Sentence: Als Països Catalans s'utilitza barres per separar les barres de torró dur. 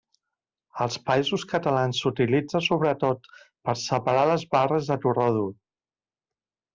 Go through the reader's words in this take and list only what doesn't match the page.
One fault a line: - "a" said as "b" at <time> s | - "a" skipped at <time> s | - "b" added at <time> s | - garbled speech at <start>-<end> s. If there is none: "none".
- "barres" said as "sobretot" at 2.7 s